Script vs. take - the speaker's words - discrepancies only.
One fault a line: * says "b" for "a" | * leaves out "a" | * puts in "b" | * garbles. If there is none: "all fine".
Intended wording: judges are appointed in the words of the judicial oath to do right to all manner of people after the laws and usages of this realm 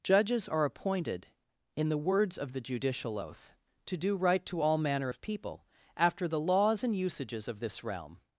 all fine